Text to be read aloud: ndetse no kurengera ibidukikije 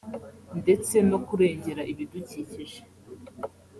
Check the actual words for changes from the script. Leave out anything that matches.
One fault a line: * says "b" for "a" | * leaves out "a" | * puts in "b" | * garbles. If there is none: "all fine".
all fine